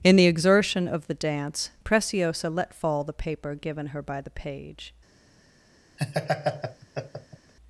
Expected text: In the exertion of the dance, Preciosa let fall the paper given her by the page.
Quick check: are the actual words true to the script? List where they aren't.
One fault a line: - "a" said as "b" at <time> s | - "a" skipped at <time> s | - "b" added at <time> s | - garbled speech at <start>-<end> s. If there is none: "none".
none